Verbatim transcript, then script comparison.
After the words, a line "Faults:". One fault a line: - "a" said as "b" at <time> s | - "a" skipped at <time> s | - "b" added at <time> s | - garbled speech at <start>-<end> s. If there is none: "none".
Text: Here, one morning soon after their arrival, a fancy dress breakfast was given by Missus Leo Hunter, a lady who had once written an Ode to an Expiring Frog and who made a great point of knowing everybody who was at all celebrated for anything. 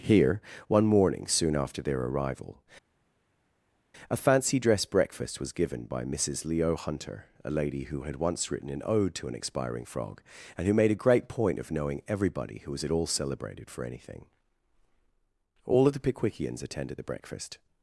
Here, one morning soon after their arrival, a fancy dress breakfast was given by Missus Leo Hunter, a lady who had once written an Ode to an Expiring Frog and who made a great point of knowing everybody who was at all celebrated for anything. All of the Pickwickians attended the breakfast
Faults:
- "All of the Pickwickians attended the breakfast" added at 15.6 s